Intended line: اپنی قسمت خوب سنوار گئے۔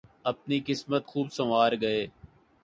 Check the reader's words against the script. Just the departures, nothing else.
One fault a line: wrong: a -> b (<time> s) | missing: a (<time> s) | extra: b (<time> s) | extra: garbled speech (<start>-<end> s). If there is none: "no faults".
no faults